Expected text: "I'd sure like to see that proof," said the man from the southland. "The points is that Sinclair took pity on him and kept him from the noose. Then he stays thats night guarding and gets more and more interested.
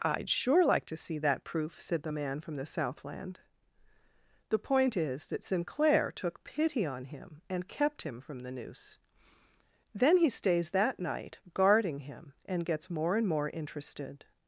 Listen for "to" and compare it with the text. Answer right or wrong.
right